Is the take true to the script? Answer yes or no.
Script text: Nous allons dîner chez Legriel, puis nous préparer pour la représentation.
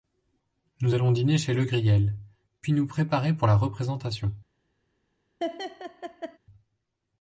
yes